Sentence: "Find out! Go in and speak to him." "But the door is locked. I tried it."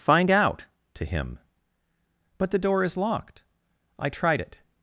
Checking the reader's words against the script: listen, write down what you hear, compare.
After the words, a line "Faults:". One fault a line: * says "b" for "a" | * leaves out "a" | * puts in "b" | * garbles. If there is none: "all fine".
"Find out! to him." "But the door is locked. I tried it."
Faults:
* leaves out "Go in and speak"